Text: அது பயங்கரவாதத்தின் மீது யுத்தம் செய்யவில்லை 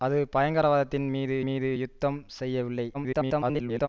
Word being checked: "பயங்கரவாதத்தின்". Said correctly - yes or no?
yes